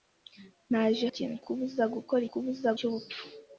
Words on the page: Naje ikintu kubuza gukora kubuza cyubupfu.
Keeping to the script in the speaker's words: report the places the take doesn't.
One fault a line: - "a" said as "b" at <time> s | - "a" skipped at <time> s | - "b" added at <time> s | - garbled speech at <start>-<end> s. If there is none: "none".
none